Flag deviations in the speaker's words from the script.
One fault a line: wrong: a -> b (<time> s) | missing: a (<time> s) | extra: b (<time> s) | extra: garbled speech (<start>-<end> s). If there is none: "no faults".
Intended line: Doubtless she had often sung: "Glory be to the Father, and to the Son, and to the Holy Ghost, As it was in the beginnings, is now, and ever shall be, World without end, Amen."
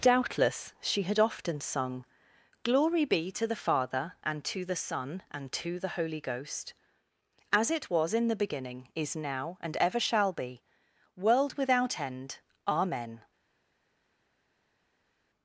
wrong: beginnings -> beginning (8.4 s)